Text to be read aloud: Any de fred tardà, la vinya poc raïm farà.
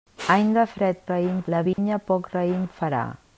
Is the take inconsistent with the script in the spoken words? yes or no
yes